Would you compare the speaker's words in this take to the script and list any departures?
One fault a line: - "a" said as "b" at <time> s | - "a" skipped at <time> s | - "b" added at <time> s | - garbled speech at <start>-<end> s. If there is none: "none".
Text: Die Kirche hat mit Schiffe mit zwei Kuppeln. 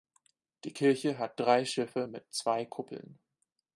- "mit" said as "drei" at 1.4 s